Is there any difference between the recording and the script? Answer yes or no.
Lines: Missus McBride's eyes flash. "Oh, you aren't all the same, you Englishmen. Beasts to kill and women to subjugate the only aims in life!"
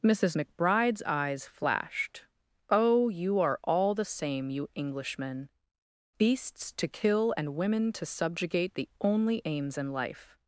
yes